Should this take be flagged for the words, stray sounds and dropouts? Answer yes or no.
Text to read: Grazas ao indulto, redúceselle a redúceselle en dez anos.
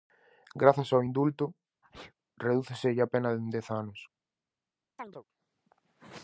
yes